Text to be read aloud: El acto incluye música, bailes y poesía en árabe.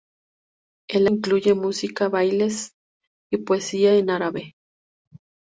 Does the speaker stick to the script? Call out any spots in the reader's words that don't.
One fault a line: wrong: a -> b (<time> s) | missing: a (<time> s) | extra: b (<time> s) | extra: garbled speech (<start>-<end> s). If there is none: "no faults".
missing: acto (1.1 s)